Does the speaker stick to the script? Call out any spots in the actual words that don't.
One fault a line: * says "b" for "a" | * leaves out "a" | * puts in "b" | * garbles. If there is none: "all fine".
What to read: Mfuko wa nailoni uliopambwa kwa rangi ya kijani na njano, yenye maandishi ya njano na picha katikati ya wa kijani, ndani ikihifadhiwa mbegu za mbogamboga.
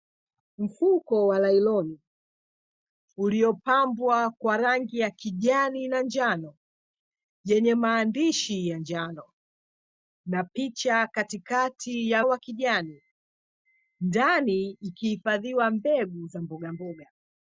all fine